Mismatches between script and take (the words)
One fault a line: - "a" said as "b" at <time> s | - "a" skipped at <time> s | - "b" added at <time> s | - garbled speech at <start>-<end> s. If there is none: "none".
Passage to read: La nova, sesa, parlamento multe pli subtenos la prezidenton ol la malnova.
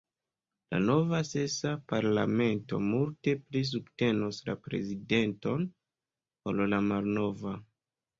none